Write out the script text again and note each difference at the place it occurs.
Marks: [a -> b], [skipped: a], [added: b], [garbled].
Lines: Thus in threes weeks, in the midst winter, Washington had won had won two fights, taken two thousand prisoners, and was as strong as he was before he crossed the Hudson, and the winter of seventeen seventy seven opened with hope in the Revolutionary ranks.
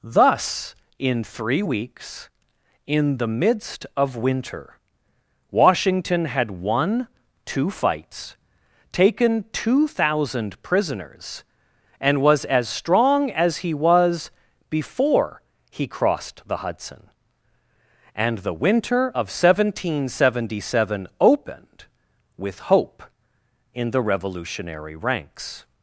Thus in [threes -> three] weeks, in the midst [added: of] winter, Washington had won [skipped: had won] two fights, taken two thousand prisoners, and was as strong as he was before he crossed the Hudson, and the winter of seventeen seventy seven opened with hope in the Revolutionary ranks.